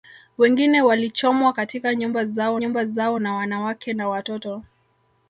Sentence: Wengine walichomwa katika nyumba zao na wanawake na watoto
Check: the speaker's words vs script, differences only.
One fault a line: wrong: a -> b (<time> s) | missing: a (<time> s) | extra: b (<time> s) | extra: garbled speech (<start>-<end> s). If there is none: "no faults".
extra: nyumba zao (2.6 s)